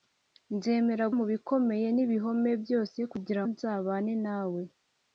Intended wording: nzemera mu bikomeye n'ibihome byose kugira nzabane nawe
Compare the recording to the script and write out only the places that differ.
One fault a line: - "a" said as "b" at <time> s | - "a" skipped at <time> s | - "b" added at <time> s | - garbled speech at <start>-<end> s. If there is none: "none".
none